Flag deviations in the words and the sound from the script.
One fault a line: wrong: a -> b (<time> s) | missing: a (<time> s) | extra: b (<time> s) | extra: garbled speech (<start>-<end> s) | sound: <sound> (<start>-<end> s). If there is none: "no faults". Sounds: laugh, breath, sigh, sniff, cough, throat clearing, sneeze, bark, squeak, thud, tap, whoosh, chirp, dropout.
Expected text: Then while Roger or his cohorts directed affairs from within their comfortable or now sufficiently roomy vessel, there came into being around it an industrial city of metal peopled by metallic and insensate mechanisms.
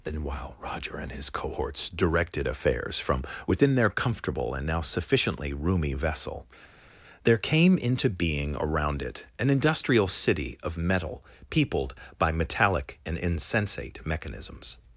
wrong: or -> and (1.0 s)
wrong: or -> and (4.5 s)